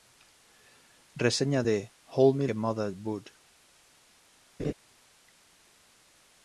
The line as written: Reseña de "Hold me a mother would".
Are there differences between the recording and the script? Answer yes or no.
no